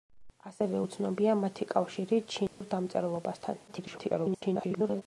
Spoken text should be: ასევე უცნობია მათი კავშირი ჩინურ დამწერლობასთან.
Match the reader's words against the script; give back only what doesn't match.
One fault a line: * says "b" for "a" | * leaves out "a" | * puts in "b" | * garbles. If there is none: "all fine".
* garbles